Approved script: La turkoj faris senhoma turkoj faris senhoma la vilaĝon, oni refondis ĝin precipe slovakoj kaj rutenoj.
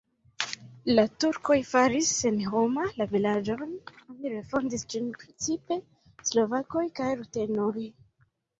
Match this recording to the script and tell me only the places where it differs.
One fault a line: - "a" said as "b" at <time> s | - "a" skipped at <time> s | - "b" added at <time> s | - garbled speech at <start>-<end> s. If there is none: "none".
- "turkoj faris senhoma" skipped at 2.9 s